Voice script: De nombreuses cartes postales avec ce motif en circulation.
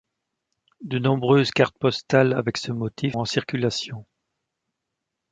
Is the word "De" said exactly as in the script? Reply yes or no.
yes